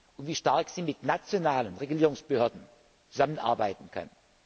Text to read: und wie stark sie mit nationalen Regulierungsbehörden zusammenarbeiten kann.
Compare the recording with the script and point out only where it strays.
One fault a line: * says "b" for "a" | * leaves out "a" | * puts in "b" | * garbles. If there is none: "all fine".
all fine